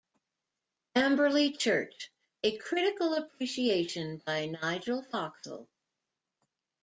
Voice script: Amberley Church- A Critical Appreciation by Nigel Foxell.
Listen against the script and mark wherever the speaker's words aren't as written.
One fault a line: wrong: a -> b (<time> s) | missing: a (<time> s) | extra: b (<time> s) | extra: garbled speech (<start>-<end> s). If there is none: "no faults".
no faults